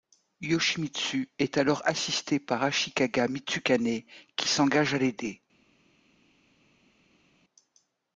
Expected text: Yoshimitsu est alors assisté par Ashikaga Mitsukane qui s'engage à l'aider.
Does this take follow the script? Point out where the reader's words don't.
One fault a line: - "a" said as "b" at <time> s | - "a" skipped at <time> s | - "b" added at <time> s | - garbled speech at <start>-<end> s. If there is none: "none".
none